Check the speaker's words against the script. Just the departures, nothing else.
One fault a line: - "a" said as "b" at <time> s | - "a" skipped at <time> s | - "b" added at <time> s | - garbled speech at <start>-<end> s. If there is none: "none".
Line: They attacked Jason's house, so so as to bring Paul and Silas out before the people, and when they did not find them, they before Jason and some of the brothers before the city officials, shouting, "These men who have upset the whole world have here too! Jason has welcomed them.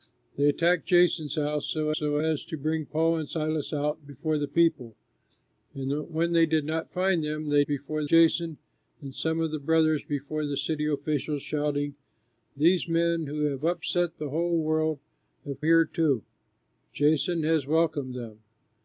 none